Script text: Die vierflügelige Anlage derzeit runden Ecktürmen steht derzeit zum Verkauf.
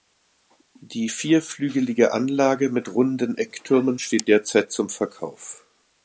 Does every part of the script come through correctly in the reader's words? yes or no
no